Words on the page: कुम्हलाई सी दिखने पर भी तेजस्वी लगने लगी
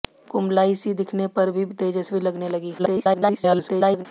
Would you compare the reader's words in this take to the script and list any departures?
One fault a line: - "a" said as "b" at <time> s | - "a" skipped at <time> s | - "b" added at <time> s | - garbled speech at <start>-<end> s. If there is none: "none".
- garbled speech at 2.8-4.1 s